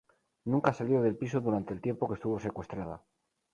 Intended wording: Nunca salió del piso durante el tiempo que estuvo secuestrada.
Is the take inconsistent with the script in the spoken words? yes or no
no